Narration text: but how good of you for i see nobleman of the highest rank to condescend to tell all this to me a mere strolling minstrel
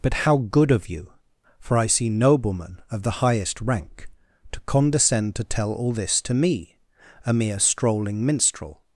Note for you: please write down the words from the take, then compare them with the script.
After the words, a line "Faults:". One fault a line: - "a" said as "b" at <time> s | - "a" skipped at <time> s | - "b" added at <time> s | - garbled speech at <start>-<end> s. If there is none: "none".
but how good of you for i see nobleman of the highest rank to condescend to tell all this to me a mere strolling minstrel
Faults:
none